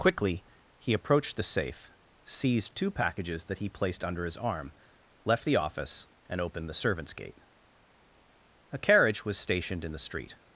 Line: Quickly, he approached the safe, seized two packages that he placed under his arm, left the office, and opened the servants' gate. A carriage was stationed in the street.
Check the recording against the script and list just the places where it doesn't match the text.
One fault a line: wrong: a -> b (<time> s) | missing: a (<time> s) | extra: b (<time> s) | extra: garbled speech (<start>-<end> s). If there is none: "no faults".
no faults